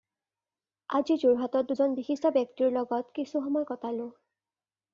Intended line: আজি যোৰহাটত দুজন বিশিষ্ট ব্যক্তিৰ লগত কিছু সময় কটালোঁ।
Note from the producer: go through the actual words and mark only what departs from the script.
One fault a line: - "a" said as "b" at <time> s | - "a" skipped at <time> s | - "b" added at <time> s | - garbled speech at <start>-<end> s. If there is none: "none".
none